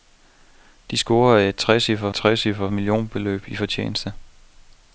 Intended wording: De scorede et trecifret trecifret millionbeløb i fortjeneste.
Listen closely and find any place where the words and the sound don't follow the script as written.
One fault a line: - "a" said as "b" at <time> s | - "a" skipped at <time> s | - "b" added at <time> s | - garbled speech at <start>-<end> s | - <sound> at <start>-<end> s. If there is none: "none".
none